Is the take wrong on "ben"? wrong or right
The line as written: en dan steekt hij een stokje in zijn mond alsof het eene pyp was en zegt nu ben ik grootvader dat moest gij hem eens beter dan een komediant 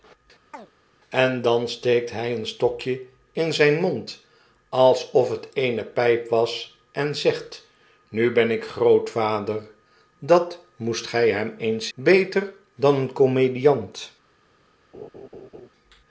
right